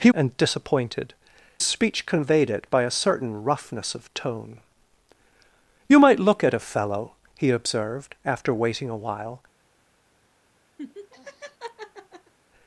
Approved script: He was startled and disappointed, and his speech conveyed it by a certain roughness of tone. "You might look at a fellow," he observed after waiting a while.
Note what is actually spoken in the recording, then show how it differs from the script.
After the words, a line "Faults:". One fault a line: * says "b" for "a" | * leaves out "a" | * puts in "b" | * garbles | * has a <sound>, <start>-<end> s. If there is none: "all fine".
He and disappointed, speech conveyed it by a certain roughness of tone. "You might look at a fellow," he observed after waiting a while.
Faults:
* leaves out "was startled"
* leaves out "and his"
* has a laugh, 10.8-12.3 s